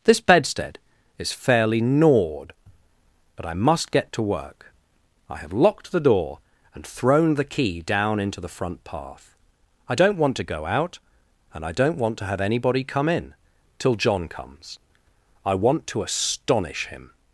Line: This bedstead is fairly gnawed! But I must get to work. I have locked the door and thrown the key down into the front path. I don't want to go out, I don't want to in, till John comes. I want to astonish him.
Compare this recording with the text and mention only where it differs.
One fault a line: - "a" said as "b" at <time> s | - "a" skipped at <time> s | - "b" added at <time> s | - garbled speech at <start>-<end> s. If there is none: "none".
- "and" added at 11.5 s
- "have anybody come" added at 12.2 s